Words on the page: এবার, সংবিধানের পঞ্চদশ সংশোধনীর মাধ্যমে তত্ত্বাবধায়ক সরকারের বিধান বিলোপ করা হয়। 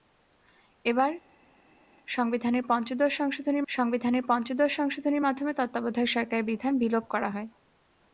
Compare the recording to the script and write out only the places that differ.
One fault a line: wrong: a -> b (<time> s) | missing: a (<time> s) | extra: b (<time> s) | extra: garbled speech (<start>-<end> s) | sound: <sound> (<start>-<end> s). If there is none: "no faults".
extra: সংবিধানের পঞ্চদশ সংশোধনীর (3.7 s)